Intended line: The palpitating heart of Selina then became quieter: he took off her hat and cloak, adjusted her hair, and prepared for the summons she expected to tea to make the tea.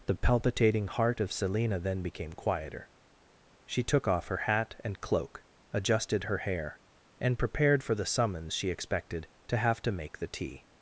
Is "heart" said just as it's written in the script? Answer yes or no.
yes